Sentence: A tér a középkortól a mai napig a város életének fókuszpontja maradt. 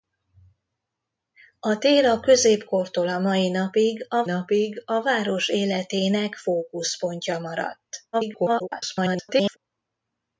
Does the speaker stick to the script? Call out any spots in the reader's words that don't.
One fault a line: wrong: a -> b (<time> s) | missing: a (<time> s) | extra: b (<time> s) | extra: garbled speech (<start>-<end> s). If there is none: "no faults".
extra: napig a (4.2 s)
extra: garbled speech (8.1-9.6 s)